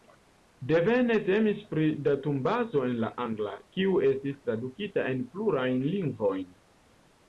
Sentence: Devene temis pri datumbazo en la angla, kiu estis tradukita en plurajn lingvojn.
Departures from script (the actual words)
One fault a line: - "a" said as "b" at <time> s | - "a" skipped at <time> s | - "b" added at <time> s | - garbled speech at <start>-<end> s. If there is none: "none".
none